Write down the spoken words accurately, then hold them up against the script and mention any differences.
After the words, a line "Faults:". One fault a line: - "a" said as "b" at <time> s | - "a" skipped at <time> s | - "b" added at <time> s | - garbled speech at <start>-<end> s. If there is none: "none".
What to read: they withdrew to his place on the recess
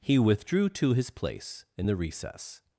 he withdrew to his place in the recess
Faults:
- "they" said as "he" at 0.0 s
- "on" said as "in" at 1.8 s